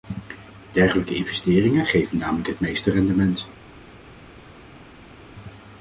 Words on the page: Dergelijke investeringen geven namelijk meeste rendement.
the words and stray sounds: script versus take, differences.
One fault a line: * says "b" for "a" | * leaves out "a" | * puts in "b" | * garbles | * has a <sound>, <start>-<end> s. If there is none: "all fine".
* puts in "het"